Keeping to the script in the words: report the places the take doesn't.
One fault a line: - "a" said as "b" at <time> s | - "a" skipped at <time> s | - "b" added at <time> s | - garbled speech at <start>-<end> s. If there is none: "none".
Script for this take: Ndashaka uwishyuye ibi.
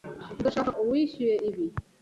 none